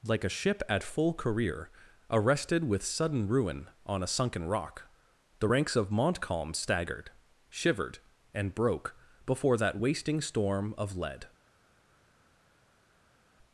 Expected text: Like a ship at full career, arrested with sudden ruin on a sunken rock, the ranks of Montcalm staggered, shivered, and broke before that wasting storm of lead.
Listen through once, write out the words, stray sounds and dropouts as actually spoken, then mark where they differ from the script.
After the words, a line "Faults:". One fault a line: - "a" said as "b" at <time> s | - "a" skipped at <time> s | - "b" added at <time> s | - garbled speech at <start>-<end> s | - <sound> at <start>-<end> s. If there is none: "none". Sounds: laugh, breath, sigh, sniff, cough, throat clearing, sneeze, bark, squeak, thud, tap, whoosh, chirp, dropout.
Like a ship at full career, arrested with sudden ruin on a sunken rock, the ranks of Montcalm staggered, shivered, and broke before that wasting storm of lead.
Faults:
none